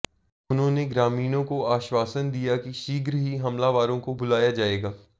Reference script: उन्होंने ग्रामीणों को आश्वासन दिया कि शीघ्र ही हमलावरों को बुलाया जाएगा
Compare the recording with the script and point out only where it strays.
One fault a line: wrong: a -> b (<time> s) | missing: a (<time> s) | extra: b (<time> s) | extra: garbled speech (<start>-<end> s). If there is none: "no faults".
no faults